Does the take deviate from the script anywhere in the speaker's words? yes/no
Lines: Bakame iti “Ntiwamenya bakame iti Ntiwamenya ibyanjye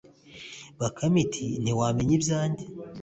yes